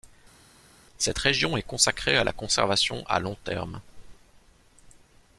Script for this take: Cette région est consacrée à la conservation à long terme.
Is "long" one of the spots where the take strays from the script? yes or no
no